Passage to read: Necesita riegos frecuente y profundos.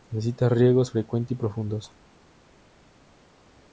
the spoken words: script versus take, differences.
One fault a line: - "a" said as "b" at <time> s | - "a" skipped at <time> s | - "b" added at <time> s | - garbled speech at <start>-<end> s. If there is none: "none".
none